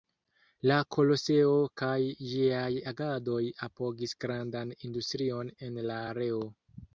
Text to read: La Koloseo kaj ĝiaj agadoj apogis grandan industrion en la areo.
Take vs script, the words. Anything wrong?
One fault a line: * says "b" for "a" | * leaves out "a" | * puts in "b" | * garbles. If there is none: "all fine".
all fine